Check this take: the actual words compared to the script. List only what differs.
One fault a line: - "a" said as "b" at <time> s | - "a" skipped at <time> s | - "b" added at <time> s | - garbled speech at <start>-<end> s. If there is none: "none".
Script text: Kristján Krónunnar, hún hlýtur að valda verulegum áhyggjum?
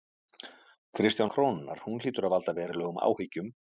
none